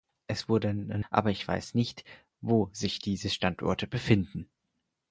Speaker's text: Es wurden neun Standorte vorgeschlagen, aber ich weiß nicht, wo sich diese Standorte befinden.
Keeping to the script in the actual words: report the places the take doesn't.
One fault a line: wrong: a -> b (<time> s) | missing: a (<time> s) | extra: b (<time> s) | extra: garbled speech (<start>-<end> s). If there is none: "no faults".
missing: neun Standorte vorgeschlagen (1.1 s)